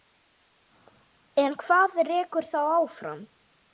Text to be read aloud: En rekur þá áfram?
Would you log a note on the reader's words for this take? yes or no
yes